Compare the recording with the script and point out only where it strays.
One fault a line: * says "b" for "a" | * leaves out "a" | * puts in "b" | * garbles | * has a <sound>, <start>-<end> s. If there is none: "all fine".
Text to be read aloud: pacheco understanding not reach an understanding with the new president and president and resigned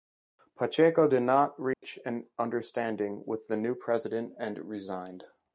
* says "did" for "understanding"
* has a dropout, 1.7-1.8 s
* leaves out "president and"